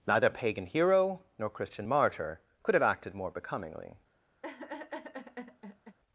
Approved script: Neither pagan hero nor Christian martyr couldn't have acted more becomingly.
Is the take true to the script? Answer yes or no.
no